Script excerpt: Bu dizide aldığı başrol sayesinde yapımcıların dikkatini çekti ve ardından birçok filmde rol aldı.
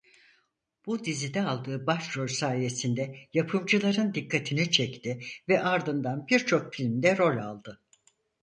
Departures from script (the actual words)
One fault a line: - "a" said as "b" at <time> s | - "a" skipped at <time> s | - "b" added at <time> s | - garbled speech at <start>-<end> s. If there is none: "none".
none